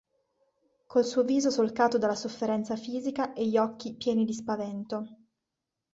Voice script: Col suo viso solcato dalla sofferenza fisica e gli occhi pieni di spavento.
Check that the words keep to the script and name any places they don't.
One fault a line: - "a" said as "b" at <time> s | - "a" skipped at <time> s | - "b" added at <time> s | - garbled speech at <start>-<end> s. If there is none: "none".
none